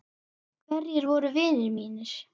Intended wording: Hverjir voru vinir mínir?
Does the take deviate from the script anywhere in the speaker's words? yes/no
no